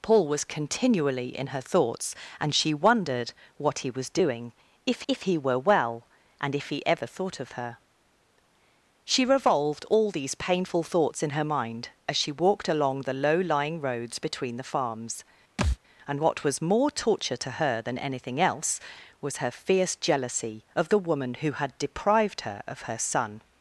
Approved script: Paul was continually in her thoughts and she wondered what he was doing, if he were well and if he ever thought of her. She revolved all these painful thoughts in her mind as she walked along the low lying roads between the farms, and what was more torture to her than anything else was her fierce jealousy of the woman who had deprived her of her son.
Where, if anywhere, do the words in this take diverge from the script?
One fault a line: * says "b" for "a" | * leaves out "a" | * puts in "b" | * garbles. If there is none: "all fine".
* puts in "if"